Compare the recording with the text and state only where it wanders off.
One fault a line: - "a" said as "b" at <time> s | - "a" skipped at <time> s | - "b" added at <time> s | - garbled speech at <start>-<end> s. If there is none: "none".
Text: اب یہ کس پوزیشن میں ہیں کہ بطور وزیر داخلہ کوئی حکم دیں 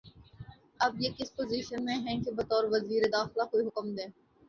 none